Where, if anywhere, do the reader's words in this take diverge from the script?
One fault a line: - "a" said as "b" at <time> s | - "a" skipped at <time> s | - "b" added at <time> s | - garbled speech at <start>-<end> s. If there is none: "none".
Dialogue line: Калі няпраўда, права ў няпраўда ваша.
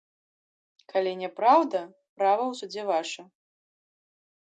- "няпраўда" said as "судзе" at 2.6 s